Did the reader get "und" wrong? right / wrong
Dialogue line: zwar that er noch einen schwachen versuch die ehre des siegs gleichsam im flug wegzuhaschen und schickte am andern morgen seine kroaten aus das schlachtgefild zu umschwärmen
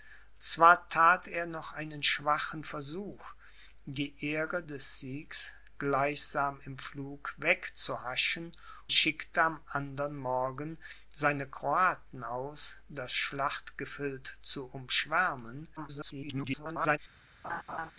wrong